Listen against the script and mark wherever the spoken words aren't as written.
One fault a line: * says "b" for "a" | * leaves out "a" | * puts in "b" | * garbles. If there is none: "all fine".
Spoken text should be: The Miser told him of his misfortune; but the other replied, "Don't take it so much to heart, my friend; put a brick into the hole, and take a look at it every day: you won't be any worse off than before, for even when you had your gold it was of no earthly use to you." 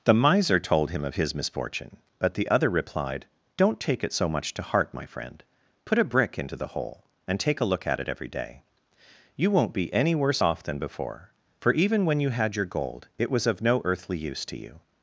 all fine